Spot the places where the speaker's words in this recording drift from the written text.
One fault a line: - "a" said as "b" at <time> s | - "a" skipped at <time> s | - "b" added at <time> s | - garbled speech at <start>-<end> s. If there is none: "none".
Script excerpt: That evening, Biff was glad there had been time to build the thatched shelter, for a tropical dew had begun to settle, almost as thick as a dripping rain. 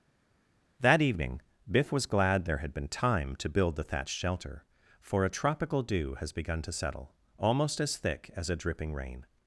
- "had" said as "has" at 6.2 s